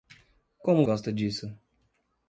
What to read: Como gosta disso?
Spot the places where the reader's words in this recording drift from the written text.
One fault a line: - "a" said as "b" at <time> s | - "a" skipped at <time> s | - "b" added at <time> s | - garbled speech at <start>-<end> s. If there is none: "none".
none